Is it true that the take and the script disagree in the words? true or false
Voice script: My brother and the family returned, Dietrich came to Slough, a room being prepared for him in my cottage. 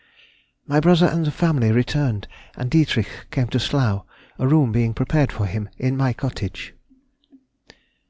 true